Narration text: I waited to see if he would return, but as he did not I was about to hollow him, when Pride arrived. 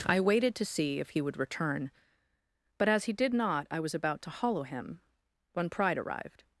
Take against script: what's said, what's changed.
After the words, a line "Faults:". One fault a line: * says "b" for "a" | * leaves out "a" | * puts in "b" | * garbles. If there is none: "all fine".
I waited to see if he would return, but as he did not I was about to hollow him, when Pride arrived.
Faults:
all fine